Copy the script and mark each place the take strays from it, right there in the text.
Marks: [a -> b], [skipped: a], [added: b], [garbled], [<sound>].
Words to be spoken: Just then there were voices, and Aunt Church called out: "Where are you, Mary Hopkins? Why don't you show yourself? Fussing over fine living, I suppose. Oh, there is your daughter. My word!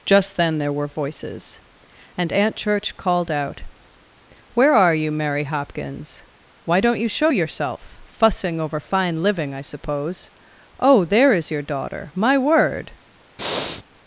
Just then there were voices, and Aunt Church called out: "Where are you, Mary Hopkins? Why don't you show yourself? Fussing over fine living, I suppose. Oh, there is your daughter. My word! [breath]